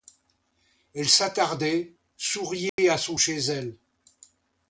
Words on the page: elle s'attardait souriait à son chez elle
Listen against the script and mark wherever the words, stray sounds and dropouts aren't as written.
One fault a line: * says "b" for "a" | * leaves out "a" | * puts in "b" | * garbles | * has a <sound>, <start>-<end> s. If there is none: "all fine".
* has a dropout, 2.7-2.8 s